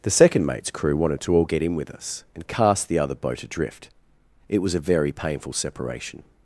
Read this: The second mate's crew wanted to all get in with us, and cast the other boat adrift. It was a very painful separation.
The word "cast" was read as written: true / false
true